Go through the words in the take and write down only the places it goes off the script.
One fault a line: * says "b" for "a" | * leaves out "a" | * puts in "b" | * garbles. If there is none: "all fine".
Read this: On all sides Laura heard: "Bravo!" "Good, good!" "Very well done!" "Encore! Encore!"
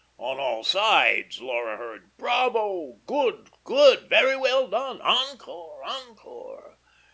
all fine